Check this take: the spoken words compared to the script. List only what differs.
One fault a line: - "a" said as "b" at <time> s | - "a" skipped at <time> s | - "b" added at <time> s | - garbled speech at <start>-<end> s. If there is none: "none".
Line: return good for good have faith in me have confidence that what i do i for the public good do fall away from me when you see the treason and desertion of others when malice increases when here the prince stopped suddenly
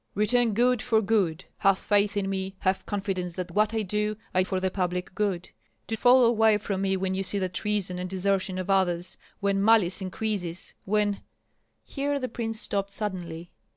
none